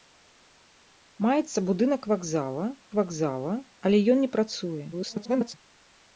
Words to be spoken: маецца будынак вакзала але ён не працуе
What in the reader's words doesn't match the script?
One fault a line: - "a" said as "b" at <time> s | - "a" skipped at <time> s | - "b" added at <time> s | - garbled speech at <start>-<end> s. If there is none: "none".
- "вакзала" added at 3.0 s
- garbled speech at 4.9-5.5 s